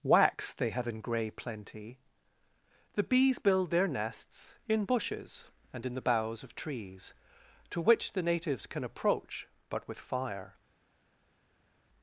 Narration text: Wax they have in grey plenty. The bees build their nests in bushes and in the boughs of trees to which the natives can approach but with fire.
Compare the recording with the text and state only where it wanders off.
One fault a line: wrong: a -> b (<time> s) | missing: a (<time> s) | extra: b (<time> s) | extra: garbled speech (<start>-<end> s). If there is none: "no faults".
no faults